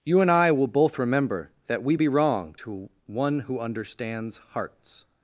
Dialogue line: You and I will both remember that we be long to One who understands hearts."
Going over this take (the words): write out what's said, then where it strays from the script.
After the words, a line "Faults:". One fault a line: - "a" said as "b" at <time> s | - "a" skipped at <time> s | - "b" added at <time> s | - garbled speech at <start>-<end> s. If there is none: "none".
You and I will both remember that we be wrong to One who understands hearts."
Faults:
- "long" said as "wrong" at 2.1 s